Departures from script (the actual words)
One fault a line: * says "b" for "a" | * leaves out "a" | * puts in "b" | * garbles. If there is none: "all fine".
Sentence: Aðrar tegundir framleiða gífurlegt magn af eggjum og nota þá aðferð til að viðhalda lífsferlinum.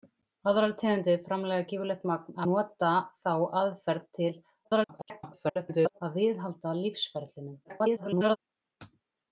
* leaves out "af eggjum og"
* garbles
* garbles